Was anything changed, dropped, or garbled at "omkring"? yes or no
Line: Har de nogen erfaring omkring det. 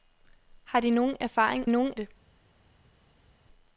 yes